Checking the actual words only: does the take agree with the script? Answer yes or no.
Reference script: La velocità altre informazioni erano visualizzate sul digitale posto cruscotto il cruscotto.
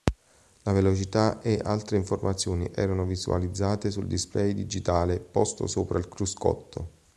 no